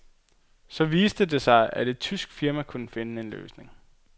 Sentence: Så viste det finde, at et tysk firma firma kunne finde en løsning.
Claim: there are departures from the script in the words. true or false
true